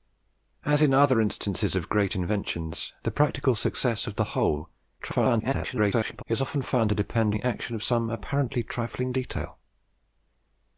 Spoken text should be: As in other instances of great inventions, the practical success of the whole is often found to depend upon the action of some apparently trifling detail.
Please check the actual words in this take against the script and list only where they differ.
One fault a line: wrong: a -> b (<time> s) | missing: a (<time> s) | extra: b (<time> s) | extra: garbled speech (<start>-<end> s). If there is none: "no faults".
extra: garbled speech (5.0-6.2 s)
missing: upon (7.3 s)